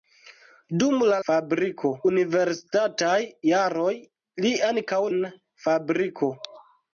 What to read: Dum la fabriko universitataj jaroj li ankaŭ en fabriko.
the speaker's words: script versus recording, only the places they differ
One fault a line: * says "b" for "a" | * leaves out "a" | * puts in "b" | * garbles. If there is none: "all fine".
all fine